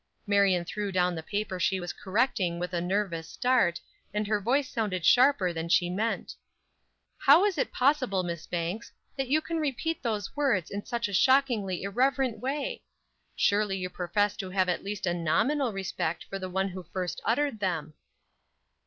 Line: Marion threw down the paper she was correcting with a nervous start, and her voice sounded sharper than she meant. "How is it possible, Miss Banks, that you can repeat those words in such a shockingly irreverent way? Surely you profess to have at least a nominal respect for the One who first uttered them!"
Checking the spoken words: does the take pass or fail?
pass